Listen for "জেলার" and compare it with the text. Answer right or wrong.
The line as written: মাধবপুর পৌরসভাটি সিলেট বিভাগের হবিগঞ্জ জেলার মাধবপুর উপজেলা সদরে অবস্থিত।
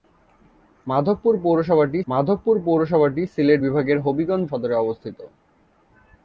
wrong